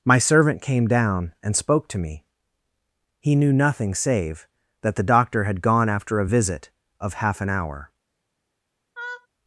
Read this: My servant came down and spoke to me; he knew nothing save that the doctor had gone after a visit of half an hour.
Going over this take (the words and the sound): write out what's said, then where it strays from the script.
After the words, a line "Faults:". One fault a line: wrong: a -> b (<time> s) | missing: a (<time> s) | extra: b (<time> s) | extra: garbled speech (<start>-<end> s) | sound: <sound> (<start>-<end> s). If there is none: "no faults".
My servant came down and spoke to me; he knew nothing save that the doctor had gone after a visit of half an hour.
Faults:
sound: laugh (9.0-9.3 s)